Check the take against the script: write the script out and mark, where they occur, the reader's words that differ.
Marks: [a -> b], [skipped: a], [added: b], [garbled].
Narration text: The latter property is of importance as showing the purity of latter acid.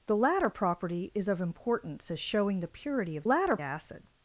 The latter property is of importance as showing the purity of latter acid.